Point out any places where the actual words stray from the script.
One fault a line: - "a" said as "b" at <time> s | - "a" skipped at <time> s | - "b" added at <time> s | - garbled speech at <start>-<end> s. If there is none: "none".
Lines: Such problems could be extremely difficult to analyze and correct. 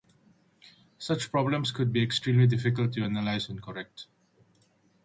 none